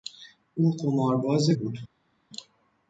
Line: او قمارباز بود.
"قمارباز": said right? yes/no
yes